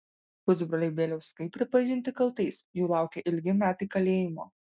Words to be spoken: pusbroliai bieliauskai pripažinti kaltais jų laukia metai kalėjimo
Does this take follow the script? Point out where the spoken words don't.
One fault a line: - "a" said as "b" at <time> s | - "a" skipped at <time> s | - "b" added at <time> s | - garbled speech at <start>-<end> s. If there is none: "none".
- "ilgi" added at 3.3 s